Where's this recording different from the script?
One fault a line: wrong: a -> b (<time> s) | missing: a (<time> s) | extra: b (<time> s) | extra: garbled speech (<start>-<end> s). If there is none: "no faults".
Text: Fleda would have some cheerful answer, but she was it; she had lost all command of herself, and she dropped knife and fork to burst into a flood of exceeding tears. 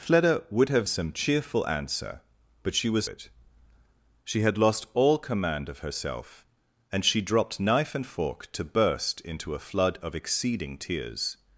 no faults